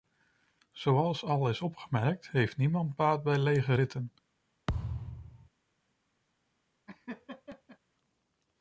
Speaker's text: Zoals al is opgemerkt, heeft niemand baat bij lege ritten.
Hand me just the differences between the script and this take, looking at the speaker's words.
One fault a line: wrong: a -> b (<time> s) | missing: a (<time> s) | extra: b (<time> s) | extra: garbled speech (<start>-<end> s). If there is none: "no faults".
no faults